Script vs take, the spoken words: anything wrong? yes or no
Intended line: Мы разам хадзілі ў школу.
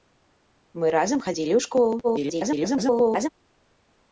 yes